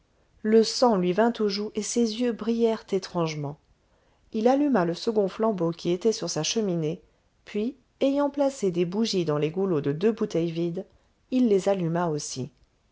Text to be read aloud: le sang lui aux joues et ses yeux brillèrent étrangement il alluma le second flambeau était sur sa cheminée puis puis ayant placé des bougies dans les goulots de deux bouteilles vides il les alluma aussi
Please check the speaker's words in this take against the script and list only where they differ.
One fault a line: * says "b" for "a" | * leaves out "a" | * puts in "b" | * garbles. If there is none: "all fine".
* puts in "vint"
* puts in "qui"
* leaves out "puis"